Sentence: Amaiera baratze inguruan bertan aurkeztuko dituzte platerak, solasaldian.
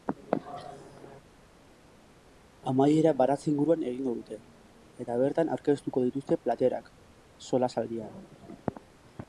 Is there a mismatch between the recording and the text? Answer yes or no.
yes